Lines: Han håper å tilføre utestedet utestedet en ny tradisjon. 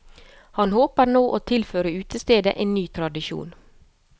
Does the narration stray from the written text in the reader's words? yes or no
yes